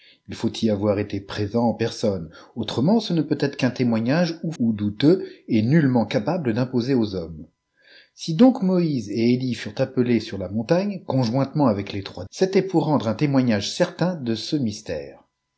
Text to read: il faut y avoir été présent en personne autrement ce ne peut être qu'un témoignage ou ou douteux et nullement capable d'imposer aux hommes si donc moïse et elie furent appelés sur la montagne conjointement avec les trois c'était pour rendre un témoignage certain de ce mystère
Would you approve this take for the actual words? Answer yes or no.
yes